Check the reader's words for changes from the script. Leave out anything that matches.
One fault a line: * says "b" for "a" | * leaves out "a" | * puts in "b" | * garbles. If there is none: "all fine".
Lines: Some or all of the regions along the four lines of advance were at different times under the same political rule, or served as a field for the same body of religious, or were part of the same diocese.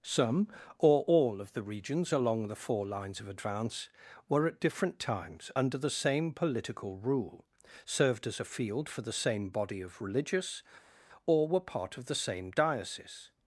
* leaves out "or"